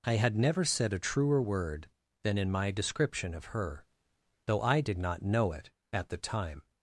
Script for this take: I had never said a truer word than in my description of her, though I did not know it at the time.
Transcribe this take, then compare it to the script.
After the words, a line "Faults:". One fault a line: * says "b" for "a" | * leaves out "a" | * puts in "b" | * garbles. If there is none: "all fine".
I had never said a truer word than in my description of her, though I did not know it at the time.
Faults:
all fine